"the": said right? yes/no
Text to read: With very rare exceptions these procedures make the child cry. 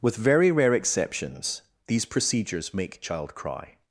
no